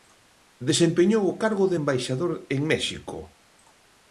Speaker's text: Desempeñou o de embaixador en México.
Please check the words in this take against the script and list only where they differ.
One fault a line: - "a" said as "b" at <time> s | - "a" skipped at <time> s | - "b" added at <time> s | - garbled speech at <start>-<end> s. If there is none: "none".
- "cargo" added at 1.4 s